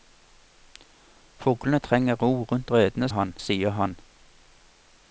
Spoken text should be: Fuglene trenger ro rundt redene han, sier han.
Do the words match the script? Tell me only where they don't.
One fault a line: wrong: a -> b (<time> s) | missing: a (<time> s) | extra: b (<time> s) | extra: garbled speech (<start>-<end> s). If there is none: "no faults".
no faults